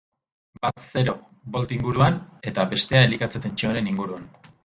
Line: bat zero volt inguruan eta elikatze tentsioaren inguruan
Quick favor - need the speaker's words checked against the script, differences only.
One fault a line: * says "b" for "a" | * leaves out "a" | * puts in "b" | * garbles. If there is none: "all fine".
* puts in "bestea"